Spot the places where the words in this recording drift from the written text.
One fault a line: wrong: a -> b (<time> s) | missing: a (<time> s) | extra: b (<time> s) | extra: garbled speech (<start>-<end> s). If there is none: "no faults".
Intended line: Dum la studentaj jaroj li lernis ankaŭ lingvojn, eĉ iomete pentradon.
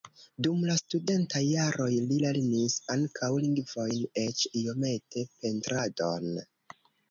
no faults